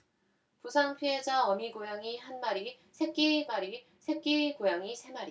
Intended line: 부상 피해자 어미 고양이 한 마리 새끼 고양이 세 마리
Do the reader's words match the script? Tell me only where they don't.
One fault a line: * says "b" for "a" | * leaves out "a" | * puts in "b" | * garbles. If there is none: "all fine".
* puts in "마리 새끼"